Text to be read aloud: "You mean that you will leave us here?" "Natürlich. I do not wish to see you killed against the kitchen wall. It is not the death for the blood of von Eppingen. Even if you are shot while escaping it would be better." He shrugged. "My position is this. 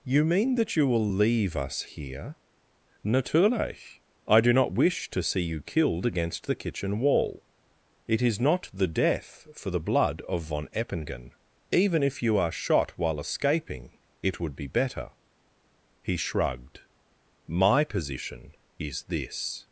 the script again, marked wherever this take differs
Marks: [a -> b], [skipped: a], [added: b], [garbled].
"You mean that you will leave us here?" "Natürlich. I do not wish to see you killed against the kitchen wall. It is not the death for the blood of von Eppingen. Even if you are shot while escaping it would be better." He shrugged. "My position is this.